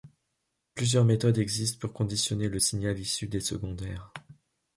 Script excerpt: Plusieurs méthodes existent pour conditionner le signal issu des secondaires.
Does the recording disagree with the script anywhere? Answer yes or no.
no